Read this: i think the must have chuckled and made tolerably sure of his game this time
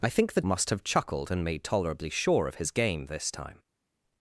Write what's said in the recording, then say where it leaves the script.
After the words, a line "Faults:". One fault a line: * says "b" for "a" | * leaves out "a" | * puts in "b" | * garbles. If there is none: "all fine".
i think the must have chuckled and made tolerably sure of his game this time
Faults:
all fine